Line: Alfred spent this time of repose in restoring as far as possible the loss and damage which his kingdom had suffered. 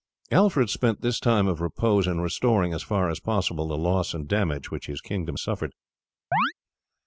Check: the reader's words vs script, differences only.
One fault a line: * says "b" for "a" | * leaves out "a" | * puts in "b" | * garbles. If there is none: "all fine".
* leaves out "had"